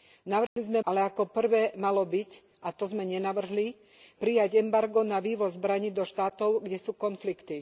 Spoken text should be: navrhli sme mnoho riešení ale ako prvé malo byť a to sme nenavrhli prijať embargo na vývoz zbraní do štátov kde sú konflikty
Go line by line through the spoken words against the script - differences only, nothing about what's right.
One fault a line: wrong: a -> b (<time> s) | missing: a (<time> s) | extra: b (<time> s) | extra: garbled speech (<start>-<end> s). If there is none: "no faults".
missing: mnoho riešení (0.8 s)